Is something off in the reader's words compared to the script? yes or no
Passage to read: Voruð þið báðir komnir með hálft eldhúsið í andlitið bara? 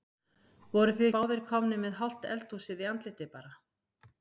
no